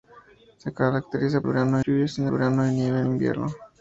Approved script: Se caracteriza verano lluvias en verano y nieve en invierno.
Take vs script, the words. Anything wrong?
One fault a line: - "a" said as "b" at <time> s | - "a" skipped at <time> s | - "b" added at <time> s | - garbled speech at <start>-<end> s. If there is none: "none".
none